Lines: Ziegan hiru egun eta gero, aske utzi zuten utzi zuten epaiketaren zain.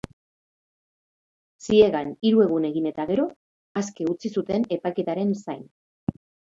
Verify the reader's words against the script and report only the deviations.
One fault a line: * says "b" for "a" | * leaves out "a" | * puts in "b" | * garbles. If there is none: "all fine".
* puts in "egin"
* leaves out "utzi zuten"